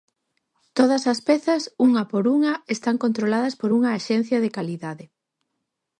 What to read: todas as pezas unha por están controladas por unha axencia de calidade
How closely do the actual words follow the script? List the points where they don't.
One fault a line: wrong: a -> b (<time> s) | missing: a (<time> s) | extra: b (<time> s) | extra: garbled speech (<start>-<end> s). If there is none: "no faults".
extra: unha (2.4 s)